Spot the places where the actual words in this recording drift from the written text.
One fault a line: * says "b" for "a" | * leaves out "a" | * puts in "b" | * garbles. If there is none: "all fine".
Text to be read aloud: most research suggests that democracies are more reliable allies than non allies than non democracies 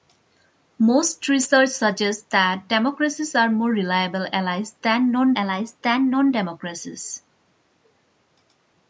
all fine